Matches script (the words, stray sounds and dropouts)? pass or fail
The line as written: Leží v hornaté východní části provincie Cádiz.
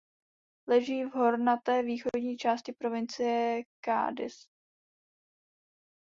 pass